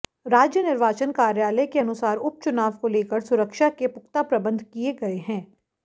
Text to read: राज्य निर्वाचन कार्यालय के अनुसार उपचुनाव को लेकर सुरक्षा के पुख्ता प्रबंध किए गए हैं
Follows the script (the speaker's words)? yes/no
yes